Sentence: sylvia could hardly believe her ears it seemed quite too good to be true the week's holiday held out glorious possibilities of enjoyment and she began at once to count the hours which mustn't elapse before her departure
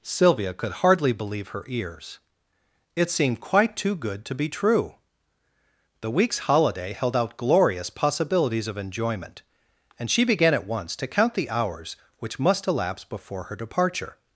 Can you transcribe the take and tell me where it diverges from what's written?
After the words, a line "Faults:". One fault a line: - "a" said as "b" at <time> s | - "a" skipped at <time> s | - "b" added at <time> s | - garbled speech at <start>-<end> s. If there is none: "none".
sylvia could hardly believe her ears it seemed quite too good to be true the week's holiday held out glorious possibilities of enjoyment and she began at once to count the hours which must elapse before her departure
Faults:
- "mustn't" said as "must" at 12.4 s